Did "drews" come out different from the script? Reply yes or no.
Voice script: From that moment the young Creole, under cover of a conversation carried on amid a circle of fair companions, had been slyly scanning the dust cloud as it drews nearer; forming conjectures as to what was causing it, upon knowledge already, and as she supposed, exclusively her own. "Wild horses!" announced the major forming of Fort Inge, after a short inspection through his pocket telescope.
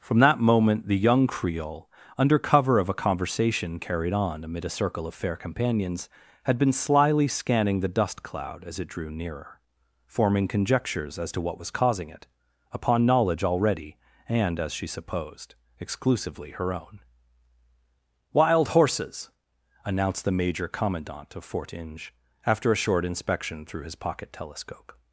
yes